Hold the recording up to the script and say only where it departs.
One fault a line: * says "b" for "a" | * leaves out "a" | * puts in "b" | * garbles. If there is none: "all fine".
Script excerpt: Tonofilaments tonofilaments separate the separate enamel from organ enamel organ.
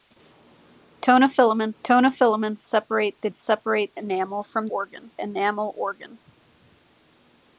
all fine